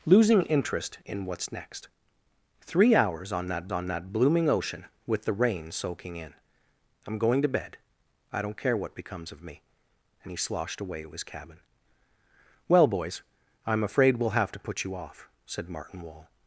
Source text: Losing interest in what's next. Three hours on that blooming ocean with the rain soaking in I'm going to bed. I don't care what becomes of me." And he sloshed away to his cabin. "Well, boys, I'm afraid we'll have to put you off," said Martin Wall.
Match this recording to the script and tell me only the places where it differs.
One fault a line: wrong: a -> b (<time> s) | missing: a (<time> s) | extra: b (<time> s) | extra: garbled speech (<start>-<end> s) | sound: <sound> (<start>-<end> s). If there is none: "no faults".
extra: on that (3.7 s)